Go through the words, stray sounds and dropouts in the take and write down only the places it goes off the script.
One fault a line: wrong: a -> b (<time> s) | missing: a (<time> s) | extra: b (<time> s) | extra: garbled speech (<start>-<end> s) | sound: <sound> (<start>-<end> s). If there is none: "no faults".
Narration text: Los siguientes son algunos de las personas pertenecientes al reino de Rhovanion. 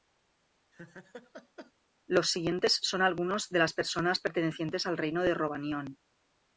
sound: laugh (0.7-1.7 s)